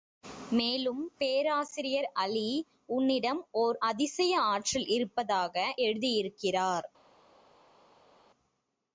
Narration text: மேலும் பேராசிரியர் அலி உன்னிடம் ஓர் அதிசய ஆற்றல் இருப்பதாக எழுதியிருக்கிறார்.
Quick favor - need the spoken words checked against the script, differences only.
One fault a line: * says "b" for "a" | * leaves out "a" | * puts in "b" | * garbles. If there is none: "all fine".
all fine